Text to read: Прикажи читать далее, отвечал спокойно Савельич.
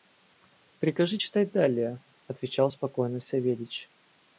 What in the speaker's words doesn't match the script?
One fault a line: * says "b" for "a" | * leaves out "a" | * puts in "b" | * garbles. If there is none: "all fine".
all fine